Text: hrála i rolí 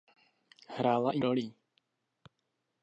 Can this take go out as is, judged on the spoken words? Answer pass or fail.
pass